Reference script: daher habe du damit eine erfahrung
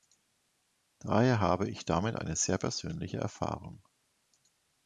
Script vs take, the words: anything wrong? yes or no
yes